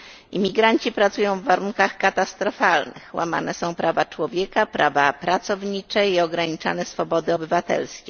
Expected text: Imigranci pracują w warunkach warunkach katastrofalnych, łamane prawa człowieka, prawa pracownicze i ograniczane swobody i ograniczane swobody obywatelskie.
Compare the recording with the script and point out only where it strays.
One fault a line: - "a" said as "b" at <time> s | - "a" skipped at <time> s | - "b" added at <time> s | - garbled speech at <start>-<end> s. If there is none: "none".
- "warunkach" skipped at 2.0 s
- "są" added at 3.5 s
- "i ograniczane swobody" skipped at 7.3 s